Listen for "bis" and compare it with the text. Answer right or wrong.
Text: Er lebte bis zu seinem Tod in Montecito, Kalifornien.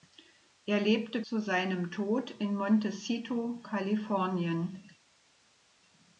wrong